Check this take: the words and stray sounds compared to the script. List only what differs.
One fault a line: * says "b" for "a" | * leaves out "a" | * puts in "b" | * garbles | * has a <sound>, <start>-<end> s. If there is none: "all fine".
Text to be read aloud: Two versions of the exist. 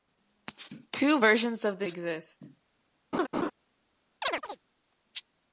* has a laugh, 3.1-3.5 s
* has a chirp, 4.2-4.6 s